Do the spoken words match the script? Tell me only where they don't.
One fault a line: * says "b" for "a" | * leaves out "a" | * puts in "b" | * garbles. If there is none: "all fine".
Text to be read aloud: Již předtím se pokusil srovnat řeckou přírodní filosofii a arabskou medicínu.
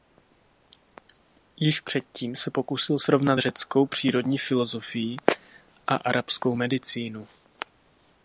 all fine